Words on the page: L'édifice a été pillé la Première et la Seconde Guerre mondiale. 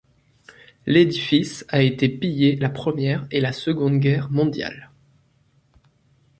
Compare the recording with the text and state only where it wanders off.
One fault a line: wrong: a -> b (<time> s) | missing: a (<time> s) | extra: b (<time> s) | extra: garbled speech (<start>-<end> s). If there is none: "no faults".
no faults